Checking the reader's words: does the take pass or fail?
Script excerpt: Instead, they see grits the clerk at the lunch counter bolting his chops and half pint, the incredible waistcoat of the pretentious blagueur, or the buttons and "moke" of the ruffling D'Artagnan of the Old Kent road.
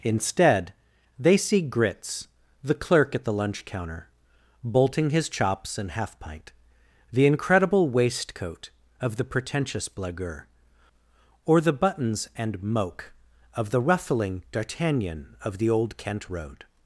pass